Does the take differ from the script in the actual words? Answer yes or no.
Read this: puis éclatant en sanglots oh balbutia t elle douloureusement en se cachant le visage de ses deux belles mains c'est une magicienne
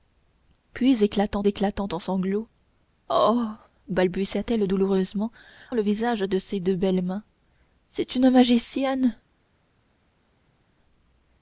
yes